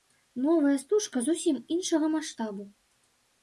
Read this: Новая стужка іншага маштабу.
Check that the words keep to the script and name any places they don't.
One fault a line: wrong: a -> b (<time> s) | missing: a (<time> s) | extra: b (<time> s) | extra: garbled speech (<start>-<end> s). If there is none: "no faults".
extra: зусім (1.3 s)